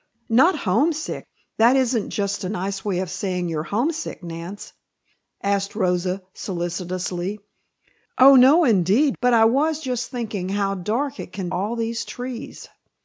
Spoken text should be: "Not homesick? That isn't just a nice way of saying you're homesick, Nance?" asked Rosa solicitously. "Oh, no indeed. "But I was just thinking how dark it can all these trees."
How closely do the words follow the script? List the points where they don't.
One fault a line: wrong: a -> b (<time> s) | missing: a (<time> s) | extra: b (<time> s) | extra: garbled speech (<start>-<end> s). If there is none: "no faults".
no faults